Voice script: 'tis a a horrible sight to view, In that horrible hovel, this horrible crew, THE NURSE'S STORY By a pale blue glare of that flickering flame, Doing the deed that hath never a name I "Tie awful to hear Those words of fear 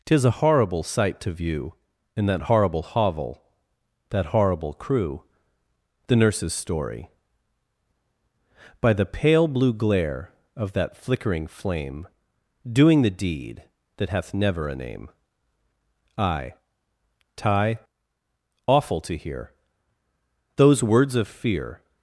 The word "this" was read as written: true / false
false